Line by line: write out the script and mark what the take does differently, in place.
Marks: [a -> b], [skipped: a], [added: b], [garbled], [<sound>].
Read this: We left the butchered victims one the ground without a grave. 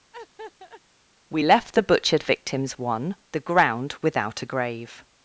[laugh] We left the butchered victims one the ground without a grave.